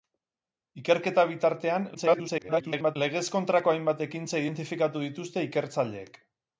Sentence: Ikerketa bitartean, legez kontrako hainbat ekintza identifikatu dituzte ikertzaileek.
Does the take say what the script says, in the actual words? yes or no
no